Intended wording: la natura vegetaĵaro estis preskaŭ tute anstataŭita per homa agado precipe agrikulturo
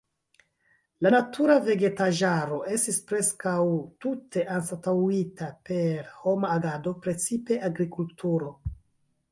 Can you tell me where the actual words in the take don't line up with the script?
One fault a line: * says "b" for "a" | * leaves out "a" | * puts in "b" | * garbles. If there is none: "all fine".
all fine